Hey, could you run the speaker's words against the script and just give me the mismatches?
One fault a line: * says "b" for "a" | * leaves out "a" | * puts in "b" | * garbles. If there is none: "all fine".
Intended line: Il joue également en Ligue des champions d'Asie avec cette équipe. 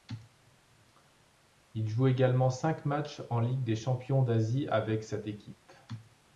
* puts in "cinq matchs"